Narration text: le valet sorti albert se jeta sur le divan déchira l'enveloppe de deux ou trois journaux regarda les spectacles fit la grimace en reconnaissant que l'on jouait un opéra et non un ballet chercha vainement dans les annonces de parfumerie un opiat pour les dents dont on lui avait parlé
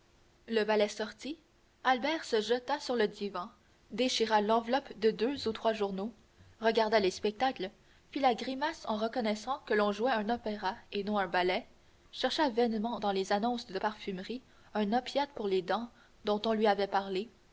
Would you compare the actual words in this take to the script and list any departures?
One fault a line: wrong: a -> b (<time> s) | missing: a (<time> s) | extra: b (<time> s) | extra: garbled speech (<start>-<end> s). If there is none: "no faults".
no faults